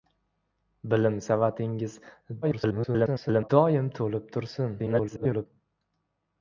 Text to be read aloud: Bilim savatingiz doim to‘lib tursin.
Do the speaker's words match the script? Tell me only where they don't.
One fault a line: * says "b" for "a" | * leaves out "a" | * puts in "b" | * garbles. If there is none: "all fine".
* garbles
* garbles